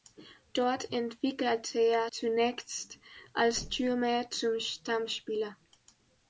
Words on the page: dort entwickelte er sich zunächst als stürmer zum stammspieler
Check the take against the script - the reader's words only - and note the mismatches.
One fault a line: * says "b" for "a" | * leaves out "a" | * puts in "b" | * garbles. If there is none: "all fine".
* leaves out "sich"